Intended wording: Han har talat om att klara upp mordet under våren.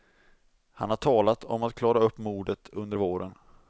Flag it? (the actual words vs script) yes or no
no